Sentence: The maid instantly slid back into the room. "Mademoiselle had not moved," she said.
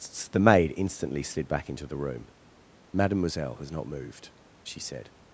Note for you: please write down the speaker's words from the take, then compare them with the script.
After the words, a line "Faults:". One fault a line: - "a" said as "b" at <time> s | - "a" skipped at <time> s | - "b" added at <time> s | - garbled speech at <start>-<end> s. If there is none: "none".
The maid instantly slid back into the room. "Mademoiselle has not moved," she said.
Faults:
- "had" said as "has" at 3.6 s